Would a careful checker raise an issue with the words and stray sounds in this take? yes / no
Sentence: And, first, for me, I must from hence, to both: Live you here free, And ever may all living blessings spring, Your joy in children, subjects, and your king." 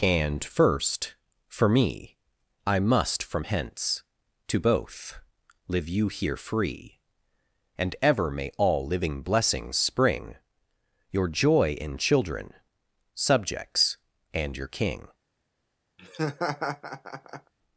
yes